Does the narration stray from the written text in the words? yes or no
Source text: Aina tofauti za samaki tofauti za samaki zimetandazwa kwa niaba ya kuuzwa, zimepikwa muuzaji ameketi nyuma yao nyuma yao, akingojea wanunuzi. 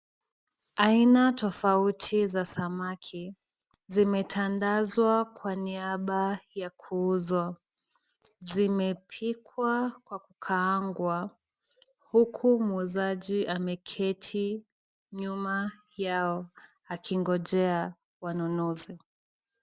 yes